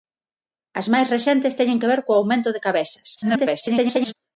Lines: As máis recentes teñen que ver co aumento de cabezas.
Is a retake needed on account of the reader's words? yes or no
yes